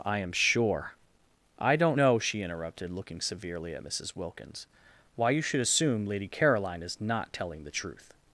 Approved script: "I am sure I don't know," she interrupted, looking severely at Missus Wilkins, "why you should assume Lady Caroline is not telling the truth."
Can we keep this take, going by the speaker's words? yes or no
yes